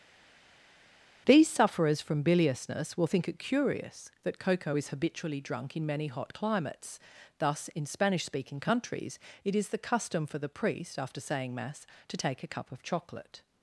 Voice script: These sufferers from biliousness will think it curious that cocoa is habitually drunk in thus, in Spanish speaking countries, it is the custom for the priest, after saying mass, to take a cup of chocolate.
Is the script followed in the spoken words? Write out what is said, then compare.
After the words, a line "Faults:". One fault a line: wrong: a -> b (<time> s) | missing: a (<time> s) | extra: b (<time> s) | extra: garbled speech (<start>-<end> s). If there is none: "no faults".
These sufferers from biliousness will think it curious that cocoa is habitually drunk in many hot climates, thus, in Spanish speaking countries, it is the custom for the priest, after saying mass, to take a cup of chocolate.
Faults:
extra: many hot climates (5.9 s)